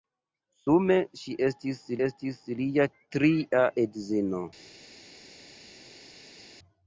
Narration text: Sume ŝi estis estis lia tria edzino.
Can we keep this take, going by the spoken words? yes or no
yes